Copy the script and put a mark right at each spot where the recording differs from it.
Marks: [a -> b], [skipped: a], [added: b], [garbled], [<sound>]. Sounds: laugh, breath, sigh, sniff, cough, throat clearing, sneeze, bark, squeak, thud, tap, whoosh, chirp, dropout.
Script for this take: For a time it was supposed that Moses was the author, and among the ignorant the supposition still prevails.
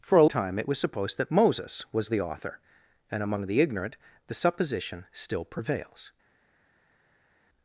For a time it was supposed that Moses was the author, and among the ignorant the supposition still prevails.